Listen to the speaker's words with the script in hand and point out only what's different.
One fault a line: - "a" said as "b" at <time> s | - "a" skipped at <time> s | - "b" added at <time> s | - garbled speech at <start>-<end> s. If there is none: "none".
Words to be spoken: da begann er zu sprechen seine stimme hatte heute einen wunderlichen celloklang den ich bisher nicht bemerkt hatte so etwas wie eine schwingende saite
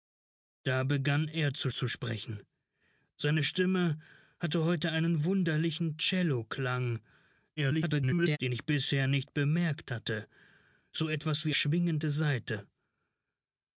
- "zu" added at 1.7 s
- garbled speech at 7.6-8.4 s
- "eine" skipped at 11.5 s